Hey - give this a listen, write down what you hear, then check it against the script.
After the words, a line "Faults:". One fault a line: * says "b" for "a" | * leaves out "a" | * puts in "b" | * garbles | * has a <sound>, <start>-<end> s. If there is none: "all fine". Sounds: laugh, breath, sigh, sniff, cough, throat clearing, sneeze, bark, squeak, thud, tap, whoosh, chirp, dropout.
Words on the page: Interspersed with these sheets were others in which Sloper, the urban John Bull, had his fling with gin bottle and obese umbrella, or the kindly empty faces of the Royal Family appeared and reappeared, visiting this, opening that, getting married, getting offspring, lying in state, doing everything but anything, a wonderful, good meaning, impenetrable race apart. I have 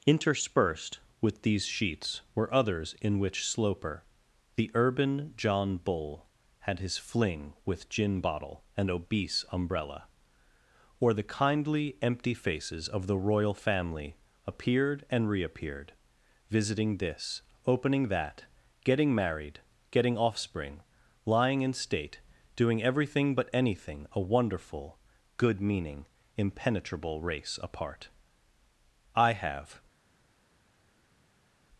Interspersed with these sheets were others in which Sloper, the urban John Bull, had his fling with gin bottle and obese umbrella, or the kindly empty faces of the Royal Family appeared and reappeared, visiting this, opening that, getting married, getting offspring, lying in state, doing everything but anything, a wonderful, good meaning, impenetrable race apart. I have
Faults:
all fine